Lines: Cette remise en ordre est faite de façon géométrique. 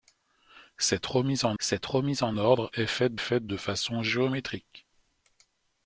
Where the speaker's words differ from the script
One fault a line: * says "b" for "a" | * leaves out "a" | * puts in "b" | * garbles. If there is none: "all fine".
* puts in "cette remise en"
* puts in "faite"